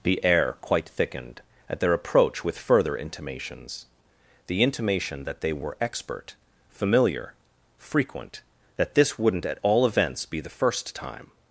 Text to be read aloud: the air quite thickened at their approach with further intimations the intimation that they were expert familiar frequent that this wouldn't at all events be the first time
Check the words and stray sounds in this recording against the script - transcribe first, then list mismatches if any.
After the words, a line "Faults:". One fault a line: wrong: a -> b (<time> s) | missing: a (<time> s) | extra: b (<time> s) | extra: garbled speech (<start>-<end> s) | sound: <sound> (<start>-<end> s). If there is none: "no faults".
the air quite thickened at their approach with further intimations the intimation that they were expert familiar frequent that this wouldn't at all events be the first time
Faults:
no faults